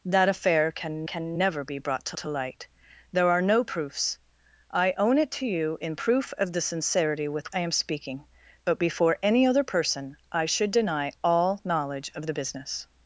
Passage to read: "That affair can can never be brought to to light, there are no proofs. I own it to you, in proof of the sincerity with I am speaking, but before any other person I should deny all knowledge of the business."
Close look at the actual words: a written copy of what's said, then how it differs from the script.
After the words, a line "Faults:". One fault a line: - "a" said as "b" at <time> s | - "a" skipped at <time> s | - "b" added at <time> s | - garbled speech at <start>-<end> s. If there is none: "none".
"That affair can can never be brought to to light, there are no proofs. I own it to you, in proof of the sincerity with I am speaking, but before any other person I should deny all knowledge of the business."
Faults:
none